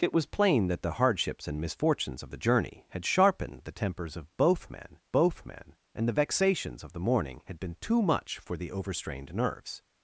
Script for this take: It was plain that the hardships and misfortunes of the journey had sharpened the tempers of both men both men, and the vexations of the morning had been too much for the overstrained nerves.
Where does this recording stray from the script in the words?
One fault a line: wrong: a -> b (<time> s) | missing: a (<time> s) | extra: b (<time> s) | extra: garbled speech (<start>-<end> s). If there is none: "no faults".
no faults